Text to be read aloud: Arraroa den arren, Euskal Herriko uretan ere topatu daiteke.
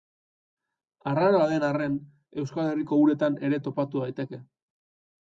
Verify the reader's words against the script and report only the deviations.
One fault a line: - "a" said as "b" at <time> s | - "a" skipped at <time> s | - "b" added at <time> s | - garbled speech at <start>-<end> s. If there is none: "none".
none